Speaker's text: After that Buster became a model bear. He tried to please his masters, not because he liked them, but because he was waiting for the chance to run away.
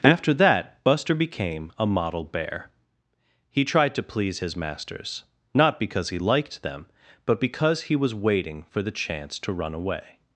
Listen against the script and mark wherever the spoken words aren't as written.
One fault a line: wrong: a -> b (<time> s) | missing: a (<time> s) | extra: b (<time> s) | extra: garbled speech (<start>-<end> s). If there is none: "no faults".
no faults